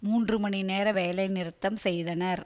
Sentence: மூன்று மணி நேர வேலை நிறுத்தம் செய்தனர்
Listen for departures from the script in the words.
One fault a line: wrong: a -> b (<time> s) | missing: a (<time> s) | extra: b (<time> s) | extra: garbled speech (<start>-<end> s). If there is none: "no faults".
no faults